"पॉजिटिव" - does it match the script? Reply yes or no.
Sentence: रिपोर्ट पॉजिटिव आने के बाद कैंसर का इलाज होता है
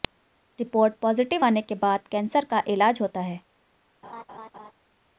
yes